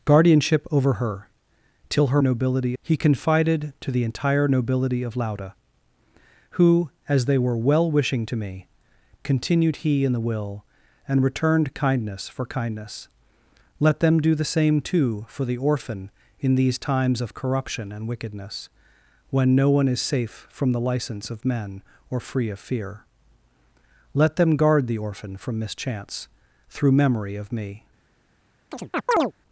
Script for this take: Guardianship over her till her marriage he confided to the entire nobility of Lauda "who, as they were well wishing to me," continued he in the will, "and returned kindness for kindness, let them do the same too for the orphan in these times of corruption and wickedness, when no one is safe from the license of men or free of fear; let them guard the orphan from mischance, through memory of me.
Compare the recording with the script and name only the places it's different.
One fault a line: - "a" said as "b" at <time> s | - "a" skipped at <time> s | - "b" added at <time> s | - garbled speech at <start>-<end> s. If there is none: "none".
- "marriage" said as "nobility" at 2.2 s